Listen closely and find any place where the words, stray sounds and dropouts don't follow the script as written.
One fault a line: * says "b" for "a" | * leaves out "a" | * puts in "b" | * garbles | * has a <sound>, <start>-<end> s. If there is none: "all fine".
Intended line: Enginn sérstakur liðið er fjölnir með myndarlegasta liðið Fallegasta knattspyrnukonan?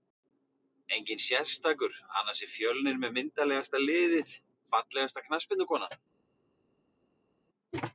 * says "annars" for "liðið"